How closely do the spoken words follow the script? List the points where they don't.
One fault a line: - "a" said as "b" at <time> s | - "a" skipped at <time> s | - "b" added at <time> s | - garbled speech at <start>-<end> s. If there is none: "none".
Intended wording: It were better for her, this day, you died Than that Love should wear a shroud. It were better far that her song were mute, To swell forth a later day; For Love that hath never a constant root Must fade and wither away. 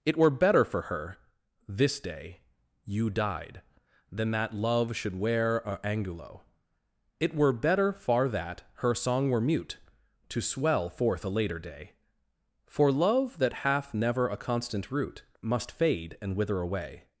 - "shroud" said as "angulo" at 5.8 s